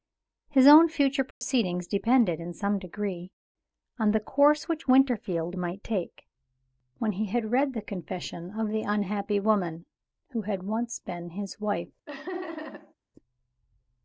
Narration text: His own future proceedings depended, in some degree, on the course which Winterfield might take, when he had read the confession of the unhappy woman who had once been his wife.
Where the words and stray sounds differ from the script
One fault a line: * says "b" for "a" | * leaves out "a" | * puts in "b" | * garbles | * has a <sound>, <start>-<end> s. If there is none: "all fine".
* has a dropout, 1.3-1.4 s
* has a laugh, 12.1-12.9 s